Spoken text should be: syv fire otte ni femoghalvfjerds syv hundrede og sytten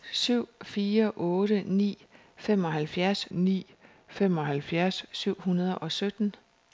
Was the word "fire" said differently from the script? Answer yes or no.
no